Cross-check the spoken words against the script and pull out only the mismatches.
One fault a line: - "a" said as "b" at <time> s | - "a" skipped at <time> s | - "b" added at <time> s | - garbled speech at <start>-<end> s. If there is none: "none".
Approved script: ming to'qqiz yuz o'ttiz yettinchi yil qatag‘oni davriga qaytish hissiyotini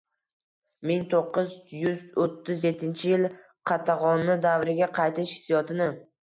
none